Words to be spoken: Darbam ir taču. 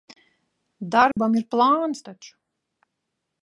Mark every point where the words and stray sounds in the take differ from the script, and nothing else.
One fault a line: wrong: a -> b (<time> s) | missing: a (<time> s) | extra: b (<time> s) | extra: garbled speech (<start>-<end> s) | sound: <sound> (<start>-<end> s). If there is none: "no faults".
sound: dropout (1.1-1.2 s)
extra: plāns (1.6 s)